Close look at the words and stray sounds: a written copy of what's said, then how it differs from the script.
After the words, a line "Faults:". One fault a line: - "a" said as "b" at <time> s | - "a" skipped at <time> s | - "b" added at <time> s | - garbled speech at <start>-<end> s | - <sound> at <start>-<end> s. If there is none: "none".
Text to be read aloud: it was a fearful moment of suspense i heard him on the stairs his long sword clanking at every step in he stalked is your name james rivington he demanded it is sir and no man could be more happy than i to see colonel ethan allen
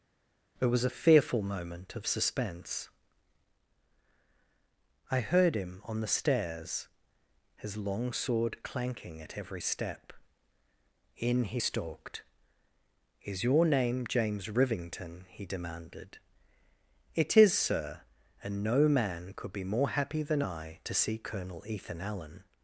it was a fearful moment of suspense i heard him on the stairs his long sword clanking at every step in he stalked is your name james rivington he demanded it is sir and no man could be more happy than i to see colonel ethan allen
Faults:
none